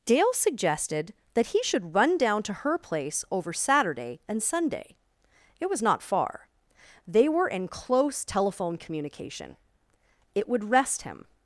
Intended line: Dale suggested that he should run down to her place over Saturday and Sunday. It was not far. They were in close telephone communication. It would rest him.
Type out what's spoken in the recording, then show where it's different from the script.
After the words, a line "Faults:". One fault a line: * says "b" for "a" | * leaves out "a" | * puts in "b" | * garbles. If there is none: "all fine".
Dale suggested that he should run down to her place over Saturday and Sunday. It was not far. They were in close telephone communication. It would rest him.
Faults:
all fine